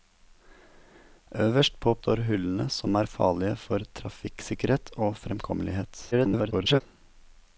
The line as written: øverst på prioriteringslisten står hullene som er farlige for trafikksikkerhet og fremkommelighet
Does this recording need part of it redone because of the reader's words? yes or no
yes